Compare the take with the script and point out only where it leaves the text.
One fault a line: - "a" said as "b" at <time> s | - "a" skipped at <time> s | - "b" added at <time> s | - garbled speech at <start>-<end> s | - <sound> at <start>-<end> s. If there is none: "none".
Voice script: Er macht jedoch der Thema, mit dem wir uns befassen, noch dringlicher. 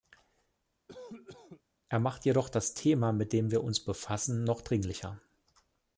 - cough at 0.9-1.6 s
- "der" said as "das" at 2.5 s